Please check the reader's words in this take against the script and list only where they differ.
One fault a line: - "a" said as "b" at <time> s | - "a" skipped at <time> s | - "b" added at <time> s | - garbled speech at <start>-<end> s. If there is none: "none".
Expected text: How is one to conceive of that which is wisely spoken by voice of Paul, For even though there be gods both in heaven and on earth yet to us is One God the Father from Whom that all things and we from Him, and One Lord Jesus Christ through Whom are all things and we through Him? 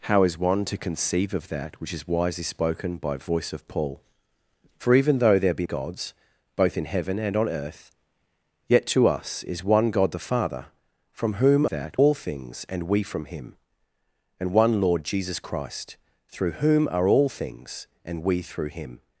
none